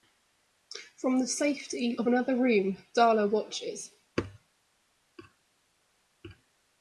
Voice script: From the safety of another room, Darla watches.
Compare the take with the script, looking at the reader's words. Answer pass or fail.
pass